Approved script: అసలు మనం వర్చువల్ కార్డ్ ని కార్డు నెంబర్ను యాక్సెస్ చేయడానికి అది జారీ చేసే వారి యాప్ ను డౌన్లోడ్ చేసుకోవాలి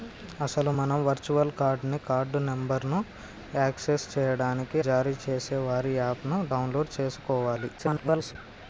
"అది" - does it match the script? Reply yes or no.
no